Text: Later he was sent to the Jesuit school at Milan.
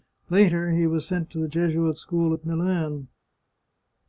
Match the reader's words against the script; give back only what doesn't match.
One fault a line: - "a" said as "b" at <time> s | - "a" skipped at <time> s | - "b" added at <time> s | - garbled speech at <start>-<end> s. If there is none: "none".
none